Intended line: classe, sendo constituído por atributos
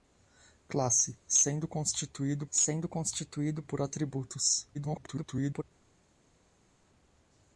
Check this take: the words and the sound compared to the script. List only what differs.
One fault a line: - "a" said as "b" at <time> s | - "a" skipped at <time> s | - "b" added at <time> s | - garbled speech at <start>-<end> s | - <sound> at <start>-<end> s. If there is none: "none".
- "sendo constituído" added at 2.5 s
- garbled speech at 4.7-5.6 s